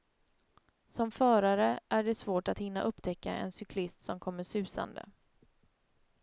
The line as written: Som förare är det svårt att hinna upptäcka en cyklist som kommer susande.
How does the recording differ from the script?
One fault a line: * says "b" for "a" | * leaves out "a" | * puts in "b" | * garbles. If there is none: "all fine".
all fine